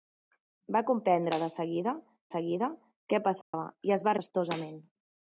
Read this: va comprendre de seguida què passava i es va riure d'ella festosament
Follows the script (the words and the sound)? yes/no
no